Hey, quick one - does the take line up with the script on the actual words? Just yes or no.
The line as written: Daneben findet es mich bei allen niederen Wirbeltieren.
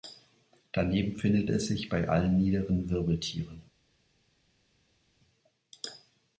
no